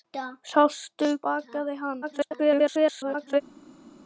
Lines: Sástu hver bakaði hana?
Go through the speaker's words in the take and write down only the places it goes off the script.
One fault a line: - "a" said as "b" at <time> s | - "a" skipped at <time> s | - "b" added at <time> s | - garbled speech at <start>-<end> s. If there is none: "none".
- "hver" skipped at 1.1 s
- garbled speech at 2.0-3.4 s